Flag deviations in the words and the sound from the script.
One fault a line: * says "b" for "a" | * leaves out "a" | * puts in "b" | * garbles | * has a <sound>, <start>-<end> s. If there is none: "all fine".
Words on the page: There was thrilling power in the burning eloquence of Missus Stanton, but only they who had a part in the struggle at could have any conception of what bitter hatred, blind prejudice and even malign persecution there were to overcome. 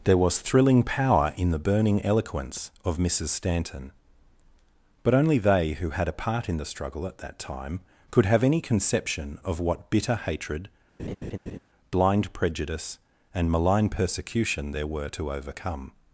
* puts in "that time"
* has a laugh, 11.0-11.6 s
* leaves out "even"